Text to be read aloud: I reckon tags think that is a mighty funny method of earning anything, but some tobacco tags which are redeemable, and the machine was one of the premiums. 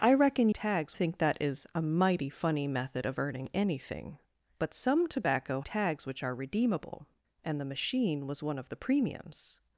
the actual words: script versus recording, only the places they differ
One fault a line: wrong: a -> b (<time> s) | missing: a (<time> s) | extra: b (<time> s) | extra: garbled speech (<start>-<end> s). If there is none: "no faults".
no faults